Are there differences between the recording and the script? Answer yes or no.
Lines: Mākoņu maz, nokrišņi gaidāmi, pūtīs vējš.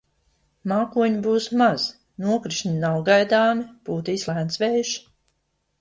yes